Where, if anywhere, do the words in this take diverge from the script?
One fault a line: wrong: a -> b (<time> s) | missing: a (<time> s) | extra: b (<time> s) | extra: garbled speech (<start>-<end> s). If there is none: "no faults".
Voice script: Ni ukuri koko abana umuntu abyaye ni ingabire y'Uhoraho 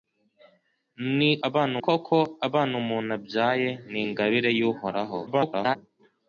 wrong: ukuri -> abana (1.5 s)
extra: garbled speech (5.3-5.8 s)